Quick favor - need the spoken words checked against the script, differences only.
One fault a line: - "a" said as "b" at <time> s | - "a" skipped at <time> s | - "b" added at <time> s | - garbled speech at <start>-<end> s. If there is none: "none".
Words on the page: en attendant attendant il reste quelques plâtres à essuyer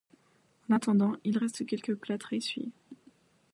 - "attendant" skipped at 1.2 s